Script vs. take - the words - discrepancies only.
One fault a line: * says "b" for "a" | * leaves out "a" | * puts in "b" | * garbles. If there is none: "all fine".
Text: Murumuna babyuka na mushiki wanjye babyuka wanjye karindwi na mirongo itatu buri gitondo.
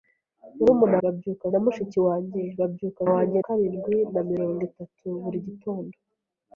all fine